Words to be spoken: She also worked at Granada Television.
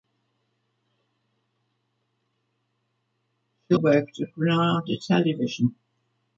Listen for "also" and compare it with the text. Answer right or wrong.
wrong